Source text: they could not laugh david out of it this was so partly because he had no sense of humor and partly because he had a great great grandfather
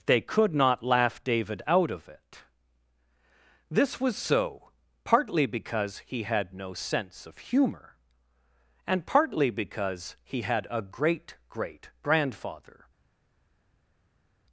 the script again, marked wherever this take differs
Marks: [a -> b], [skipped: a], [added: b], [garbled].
they could not laugh david out of it this was so partly because he had no sense of humor and partly because he had a great great grandfather